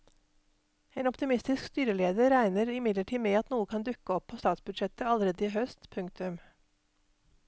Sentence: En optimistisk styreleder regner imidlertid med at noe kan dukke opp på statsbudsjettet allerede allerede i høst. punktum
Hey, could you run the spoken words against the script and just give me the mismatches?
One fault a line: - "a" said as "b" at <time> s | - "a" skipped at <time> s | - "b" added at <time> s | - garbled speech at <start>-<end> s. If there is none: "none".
- "allerede" skipped at 5.5 s